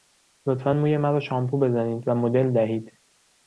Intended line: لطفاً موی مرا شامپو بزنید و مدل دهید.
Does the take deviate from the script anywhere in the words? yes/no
no